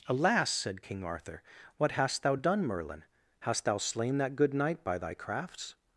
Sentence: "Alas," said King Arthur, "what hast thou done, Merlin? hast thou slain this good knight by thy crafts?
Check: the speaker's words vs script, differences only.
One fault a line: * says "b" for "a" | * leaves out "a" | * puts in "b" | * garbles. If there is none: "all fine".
* says "that" for "this"